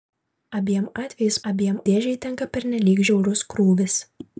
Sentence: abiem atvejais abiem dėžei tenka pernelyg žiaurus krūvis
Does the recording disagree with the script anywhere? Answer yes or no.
no